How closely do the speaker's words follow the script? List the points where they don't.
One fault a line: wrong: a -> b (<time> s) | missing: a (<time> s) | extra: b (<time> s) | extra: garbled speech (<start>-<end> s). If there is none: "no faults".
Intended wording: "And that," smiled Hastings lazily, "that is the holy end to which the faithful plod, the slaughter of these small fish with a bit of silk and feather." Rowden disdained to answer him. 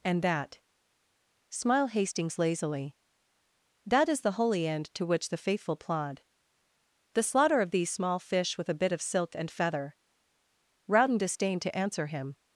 wrong: smiled -> smile (1.5 s)